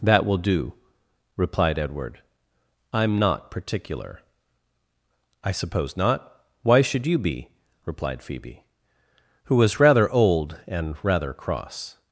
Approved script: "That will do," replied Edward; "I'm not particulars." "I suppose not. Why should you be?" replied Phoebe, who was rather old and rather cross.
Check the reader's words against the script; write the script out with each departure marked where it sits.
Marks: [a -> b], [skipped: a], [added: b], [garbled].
"That will do," replied Edward; "I'm not [particulars." -> particular] "I suppose not. Why should you be?" replied Phoebe, who was rather old and rather cross.